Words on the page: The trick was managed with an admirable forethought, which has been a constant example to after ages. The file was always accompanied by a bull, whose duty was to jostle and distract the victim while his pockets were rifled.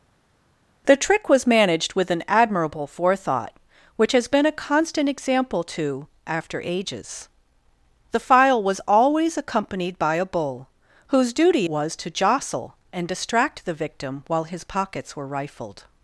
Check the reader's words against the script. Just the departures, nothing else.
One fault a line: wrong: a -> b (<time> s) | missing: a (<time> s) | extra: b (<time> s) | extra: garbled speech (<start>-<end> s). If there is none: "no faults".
no faults